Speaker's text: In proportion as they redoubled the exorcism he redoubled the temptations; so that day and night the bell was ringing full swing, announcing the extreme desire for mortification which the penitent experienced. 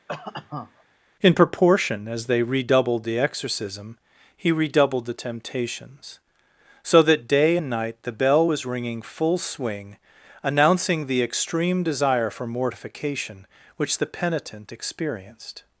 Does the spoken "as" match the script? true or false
true